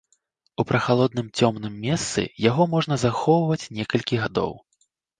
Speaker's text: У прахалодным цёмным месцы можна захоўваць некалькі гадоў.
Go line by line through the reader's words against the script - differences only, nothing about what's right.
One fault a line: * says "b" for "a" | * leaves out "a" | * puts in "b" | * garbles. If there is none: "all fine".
* puts in "яго"